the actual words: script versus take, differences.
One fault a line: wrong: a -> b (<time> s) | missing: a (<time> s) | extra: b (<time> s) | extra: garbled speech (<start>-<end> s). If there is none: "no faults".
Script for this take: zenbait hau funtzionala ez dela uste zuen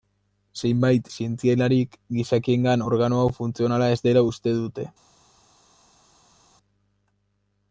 extra: zientzialarik gizakiengan organo (1.1 s)
wrong: zuen -> dute (4.6 s)